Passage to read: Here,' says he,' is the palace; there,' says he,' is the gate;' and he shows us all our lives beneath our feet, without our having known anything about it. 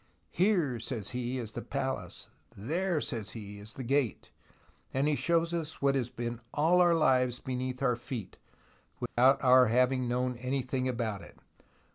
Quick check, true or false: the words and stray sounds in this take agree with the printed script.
false